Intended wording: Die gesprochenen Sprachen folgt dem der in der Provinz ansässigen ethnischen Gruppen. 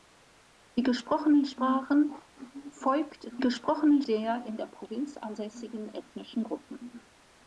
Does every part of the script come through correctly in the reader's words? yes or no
no